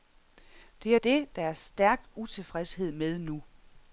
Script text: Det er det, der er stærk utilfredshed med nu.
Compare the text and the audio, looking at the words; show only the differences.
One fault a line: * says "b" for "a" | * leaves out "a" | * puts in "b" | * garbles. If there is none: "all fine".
all fine